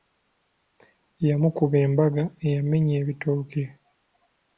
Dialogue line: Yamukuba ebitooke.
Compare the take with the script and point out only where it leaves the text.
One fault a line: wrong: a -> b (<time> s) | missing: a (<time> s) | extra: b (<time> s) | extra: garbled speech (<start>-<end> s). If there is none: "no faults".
extra: embaga eyamenya (1.9 s)